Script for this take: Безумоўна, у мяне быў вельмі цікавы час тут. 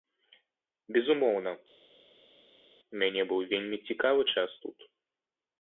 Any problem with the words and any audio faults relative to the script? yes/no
no